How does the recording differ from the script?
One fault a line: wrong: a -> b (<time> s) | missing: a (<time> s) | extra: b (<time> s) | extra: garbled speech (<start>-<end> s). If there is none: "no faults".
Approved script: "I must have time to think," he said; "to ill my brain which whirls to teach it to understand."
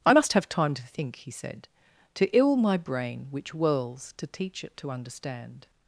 no faults